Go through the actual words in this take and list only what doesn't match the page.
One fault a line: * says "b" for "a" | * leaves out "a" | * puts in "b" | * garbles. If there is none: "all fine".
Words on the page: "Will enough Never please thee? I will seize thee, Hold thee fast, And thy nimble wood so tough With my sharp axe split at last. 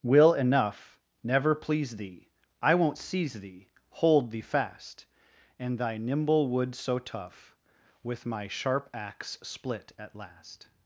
* says "won't" for "will"